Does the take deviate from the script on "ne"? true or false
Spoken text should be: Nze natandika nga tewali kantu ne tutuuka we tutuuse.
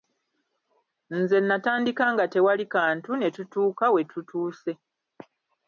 false